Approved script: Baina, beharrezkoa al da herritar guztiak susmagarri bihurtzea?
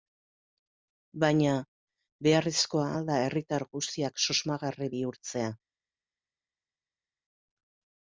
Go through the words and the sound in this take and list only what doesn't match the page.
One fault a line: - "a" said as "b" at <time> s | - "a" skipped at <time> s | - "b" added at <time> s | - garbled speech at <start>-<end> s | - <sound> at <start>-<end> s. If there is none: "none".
none